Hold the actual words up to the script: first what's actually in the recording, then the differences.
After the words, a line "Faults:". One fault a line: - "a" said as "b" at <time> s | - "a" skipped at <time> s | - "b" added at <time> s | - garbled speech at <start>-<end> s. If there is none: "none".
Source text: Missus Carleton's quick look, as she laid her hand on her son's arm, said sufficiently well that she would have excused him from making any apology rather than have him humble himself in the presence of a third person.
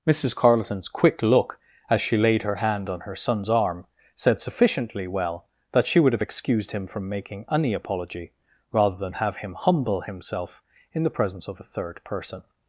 Missus Carleton's quick look, as she laid her hand on her son's arm, said sufficiently well that she would have excused him from making any apology rather than have him humble himself in the presence of a third person.
Faults:
none